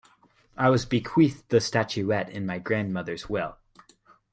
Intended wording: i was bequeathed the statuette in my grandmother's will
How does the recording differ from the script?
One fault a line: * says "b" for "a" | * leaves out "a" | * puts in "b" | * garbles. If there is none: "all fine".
all fine